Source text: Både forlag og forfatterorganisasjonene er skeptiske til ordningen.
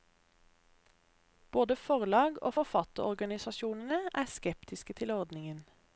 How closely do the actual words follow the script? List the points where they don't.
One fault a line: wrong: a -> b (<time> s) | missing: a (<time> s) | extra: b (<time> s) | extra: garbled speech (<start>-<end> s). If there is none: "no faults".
no faults